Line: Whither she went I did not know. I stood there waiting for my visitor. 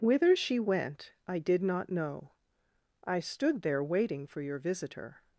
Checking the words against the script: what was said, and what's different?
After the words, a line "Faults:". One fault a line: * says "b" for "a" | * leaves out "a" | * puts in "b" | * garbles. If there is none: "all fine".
Whither she went I did not know. I stood there waiting for your visitor.
Faults:
* says "your" for "my"